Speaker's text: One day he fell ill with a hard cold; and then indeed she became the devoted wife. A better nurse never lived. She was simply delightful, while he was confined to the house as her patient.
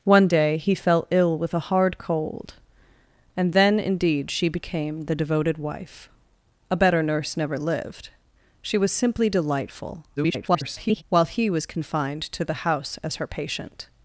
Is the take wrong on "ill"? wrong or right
right